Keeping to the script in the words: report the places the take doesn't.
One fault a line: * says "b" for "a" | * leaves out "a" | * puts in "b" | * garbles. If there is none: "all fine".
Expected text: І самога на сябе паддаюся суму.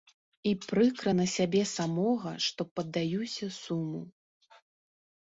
* says "прыкра" for "самога"
* puts in "самога што"